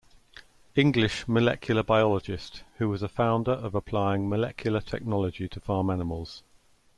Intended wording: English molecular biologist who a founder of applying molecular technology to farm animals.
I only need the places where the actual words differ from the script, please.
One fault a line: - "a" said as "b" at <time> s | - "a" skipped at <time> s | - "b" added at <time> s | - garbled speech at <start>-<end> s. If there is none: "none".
- "was" added at 2.9 s